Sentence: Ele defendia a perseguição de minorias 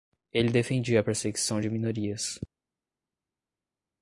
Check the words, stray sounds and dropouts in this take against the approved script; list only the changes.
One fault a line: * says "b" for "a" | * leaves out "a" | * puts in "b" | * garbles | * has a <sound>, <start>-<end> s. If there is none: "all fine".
all fine